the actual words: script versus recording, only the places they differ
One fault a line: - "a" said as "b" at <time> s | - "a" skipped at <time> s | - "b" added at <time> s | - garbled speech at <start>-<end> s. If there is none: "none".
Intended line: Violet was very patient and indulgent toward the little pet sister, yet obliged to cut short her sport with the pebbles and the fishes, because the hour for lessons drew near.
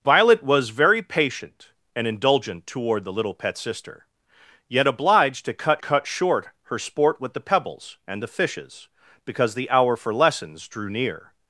- "cut" added at 5.8 s